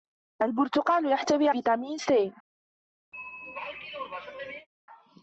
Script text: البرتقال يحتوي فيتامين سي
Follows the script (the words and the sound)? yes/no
no